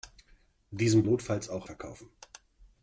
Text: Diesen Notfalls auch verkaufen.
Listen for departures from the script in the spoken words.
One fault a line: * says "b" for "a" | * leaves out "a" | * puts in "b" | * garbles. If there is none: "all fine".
all fine